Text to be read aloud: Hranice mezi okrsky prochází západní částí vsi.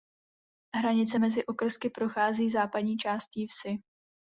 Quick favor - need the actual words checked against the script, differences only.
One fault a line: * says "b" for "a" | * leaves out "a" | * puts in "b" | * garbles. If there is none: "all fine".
all fine